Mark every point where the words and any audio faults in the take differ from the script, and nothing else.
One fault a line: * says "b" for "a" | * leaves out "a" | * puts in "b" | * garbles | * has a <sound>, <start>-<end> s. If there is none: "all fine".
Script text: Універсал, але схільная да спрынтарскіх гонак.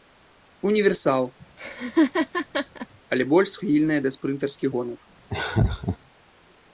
* has a laugh, 1.6-2.9 s
* puts in "больш"
* has a laugh, 5.3-6.0 s